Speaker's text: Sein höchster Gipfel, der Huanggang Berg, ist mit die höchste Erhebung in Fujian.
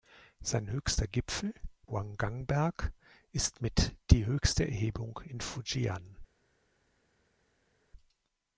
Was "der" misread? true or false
true